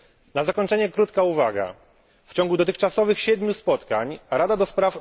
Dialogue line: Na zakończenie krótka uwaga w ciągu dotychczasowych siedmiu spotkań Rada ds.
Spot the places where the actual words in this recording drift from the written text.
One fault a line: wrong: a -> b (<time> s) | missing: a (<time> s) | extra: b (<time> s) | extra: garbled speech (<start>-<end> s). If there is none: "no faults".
no faults